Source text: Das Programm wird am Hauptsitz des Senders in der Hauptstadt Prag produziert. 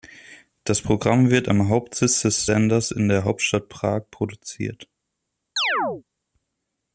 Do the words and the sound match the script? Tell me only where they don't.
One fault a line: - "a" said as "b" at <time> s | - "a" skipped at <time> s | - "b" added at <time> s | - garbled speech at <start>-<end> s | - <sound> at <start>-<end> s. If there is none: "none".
- chirp at 5.6-6.0 s